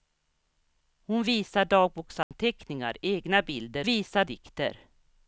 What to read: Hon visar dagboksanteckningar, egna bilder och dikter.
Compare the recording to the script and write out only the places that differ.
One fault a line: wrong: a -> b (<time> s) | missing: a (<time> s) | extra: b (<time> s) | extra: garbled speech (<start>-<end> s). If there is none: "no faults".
wrong: och -> visar (3.8 s)